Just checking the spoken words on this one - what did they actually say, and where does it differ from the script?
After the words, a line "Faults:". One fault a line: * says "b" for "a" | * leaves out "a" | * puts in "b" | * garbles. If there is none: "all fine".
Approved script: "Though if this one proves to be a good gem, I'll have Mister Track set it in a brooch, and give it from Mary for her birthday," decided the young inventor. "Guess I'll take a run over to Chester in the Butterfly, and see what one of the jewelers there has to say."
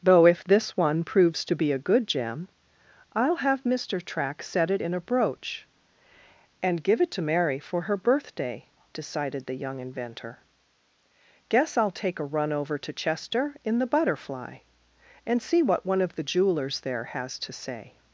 "Though if this one proves to be a good gem, I'll have Mister Track set it in a brooch, and give it to Mary for her birthday," decided the young inventor. "Guess I'll take a run over to Chester in the Butterfly, and see what one of the jewelers there has to say."
Faults:
* says "to" for "from"